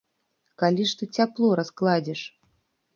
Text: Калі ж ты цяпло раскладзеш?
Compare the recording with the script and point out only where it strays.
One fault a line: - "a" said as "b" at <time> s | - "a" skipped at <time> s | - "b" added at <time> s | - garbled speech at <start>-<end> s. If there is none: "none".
none